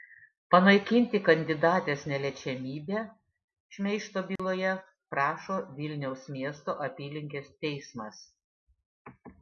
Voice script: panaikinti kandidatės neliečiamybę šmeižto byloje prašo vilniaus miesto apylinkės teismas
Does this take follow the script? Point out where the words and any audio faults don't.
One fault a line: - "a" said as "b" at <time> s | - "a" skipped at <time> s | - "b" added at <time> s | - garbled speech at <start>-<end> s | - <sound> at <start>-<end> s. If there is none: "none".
- dropout at 4.4-4.4 s